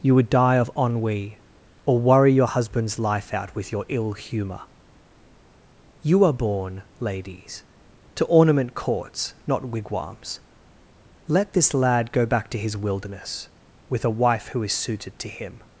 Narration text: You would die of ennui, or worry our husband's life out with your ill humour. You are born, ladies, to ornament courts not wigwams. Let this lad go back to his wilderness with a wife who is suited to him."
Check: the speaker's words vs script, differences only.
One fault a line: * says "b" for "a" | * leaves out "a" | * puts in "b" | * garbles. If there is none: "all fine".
* says "your" for "our"